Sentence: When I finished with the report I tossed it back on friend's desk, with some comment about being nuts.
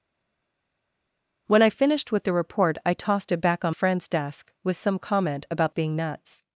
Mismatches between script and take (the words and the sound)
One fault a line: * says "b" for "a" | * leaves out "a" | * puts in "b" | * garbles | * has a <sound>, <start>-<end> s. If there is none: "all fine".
all fine